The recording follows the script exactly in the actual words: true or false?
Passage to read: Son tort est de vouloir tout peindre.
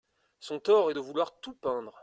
true